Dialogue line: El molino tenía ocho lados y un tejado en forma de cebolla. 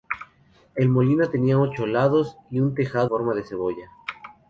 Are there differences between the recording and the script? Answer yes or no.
yes